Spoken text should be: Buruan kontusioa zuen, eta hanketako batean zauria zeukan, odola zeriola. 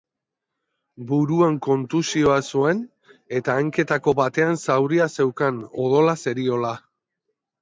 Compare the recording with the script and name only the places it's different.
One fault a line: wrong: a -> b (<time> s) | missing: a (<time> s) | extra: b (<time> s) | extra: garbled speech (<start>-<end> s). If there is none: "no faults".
no faults